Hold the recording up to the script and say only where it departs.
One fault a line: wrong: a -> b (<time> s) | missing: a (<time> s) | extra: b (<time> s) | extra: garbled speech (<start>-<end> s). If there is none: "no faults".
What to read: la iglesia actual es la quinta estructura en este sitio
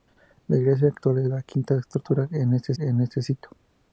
extra: en este (2.8 s)